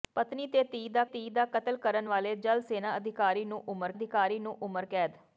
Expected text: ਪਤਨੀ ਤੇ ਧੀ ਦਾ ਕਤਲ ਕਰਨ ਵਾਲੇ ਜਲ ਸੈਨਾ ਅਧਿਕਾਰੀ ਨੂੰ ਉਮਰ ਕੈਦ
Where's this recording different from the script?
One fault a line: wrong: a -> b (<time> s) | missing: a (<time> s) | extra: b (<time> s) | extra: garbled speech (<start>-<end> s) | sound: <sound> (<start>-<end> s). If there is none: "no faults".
extra: ਧੀ ਦਾ (1.0 s)
extra: ਅਧਿਕਾਰੀ ਨੂੰ ਉਮਰ (3.9 s)